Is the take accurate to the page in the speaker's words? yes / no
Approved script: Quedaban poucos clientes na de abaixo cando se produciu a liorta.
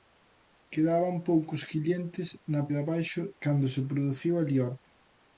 yes